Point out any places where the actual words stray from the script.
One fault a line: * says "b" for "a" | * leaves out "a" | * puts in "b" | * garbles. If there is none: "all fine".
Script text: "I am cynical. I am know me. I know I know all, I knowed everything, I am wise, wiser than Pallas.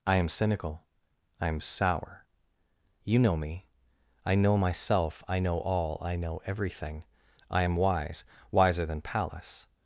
* puts in "sour You"
* puts in "myself"
* says "know" for "knowed"